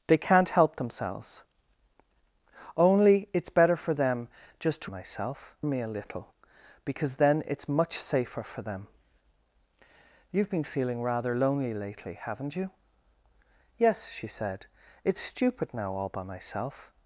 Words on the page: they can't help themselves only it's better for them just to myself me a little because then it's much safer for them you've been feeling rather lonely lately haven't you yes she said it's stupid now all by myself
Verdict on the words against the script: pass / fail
pass